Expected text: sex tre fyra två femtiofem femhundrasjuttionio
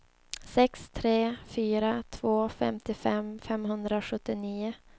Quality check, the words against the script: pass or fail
pass